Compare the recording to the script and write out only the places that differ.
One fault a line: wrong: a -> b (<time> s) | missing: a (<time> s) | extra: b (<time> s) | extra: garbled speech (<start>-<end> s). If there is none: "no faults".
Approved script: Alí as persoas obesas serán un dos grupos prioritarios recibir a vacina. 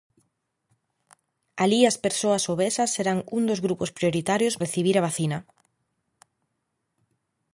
no faults